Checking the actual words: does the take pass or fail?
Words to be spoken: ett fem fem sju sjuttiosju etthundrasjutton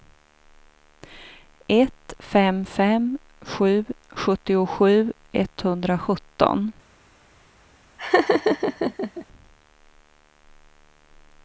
pass